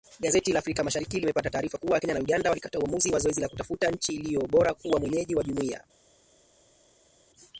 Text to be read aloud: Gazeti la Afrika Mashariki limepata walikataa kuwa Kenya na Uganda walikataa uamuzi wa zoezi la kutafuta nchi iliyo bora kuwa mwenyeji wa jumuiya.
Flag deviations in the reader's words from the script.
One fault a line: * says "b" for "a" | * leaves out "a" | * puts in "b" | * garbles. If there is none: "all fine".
* says "taarifa" for "walikataa"